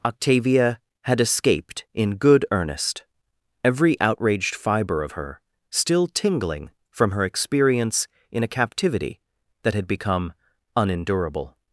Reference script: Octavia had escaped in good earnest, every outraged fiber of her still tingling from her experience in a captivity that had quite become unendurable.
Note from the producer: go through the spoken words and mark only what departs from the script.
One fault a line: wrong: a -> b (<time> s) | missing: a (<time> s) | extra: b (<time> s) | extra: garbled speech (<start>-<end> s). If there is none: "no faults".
missing: quite (9.9 s)